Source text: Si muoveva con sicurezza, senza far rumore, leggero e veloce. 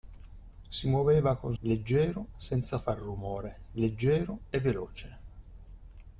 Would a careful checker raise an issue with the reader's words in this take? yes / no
yes